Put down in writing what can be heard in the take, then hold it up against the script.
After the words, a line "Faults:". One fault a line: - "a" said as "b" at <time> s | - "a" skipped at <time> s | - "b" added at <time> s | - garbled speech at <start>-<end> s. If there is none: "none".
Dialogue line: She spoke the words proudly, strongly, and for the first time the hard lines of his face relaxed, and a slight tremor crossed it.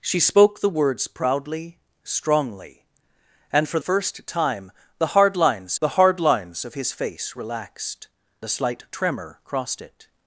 She spoke the words proudly, strongly, and for first time the hard lines the hard lines of his face relaxed, a slight tremor crossed it.
Faults:
- "the" skipped at 3.8 s
- "the hard lines" added at 5.8 s
- "and" skipped at 8.1 s